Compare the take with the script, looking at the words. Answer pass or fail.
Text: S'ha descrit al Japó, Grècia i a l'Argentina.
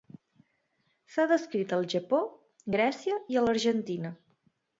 pass